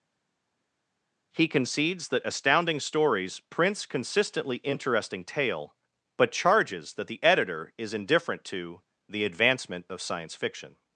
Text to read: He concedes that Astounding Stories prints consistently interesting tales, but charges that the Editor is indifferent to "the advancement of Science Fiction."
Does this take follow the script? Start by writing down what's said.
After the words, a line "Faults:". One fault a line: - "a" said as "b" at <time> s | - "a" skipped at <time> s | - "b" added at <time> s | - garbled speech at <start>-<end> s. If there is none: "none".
He concedes that Astounding Stories prints consistently interesting tale, but charges that the Editor is indifferent to "the advancement of Science Fiction."
Faults:
- "tales" said as "tale" at 5.2 s